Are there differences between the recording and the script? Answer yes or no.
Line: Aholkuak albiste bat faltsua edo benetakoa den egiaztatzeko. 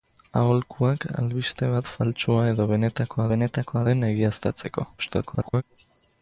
yes